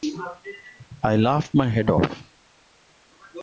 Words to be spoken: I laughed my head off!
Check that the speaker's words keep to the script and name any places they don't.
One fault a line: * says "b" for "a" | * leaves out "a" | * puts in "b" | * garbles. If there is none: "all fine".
all fine